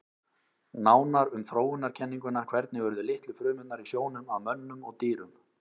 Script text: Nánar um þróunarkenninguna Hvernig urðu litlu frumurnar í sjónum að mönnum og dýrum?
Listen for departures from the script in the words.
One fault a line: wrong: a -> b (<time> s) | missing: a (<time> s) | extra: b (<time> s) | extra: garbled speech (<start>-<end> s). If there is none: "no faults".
no faults